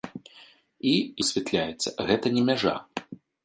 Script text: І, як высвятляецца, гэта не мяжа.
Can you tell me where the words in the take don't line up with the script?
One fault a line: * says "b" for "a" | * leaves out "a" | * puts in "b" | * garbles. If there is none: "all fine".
* leaves out "як"